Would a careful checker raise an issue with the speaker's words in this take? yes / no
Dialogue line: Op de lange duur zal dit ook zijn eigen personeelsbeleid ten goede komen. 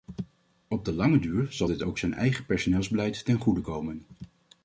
no